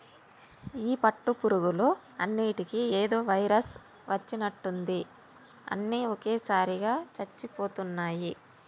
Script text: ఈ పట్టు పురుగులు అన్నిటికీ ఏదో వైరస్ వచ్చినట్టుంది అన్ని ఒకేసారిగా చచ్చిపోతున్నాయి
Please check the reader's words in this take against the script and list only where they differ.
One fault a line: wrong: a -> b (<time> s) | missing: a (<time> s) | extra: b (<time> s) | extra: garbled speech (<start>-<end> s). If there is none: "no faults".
no faults